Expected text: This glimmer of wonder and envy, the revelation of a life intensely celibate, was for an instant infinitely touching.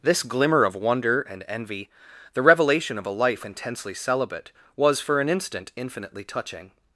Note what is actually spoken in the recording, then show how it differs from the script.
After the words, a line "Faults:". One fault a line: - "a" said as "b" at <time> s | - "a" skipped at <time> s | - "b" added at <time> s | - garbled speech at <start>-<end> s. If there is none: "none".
This glimmer of wonder and envy, the revelation of a life intensely celibate, was for an instant infinitely touching.
Faults:
none